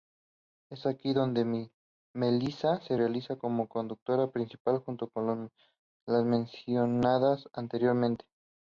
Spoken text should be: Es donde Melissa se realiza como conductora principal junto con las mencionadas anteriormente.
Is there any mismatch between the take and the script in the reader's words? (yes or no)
yes